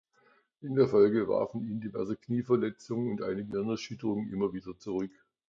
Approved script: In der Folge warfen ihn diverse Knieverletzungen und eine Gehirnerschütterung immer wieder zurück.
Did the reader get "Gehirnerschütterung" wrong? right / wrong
right